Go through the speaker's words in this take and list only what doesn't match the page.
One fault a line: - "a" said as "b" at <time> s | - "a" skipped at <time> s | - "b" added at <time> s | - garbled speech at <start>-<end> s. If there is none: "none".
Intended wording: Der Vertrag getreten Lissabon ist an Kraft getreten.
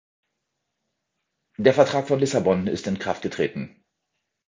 - "getreten" said as "von" at 2.1 s
- "an" said as "in" at 2.9 s